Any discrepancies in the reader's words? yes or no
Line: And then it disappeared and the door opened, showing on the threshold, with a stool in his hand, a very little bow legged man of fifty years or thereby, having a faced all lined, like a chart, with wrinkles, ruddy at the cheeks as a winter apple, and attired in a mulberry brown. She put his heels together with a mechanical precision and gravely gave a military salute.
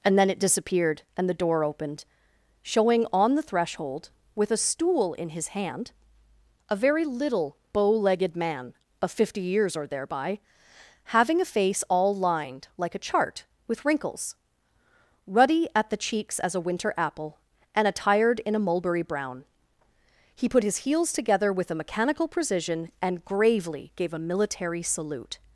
yes